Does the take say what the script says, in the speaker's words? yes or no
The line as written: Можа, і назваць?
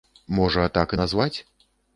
no